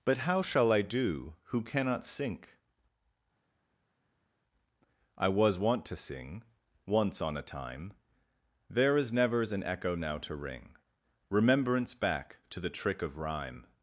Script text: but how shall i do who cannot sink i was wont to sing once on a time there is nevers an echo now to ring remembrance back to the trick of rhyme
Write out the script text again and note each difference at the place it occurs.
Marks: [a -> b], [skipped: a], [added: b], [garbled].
but how shall i do who cannot sink i was wont to sing once on a time there is nevers an echo now to ring remembrance back to the trick of rhyme